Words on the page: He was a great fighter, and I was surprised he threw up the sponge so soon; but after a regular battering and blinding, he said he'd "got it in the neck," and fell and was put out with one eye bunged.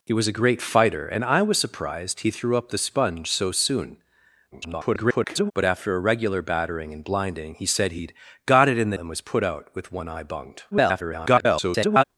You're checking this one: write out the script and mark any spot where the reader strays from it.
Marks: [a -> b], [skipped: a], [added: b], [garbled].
He was a great fighter, and I was surprised he threw up the sponge so soon; [garbled] but after a regular battering and blinding, he said he'd "got it in the [skipped: neck," and fell] and was put out with one eye bunged. [garbled]